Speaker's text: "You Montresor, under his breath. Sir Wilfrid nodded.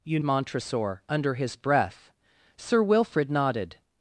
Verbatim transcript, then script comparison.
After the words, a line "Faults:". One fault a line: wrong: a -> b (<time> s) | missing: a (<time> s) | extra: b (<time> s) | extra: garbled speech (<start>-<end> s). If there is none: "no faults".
"You Montresor, under his breath. Sir Wilfrid nodded.
Faults:
no faults